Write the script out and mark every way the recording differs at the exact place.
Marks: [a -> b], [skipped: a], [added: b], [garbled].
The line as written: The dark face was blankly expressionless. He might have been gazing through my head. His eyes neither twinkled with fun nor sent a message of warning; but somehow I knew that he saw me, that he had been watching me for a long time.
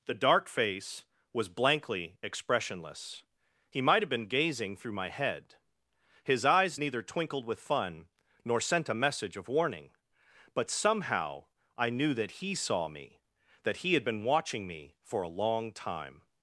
The dark face was blankly expressionless. He might have been gazing through my head. His eyes neither twinkled with fun nor sent a message of warning; but somehow I knew that he saw me, that he had been watching me for a long time.